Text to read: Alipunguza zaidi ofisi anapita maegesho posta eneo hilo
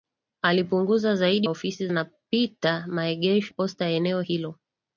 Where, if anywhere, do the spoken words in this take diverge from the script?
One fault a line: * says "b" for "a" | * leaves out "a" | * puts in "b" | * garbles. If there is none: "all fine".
all fine